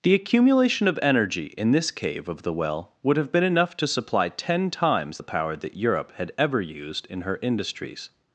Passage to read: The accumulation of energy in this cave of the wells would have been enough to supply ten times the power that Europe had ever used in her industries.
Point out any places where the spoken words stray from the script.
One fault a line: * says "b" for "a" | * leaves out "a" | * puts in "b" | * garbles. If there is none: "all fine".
* says "well" for "wells"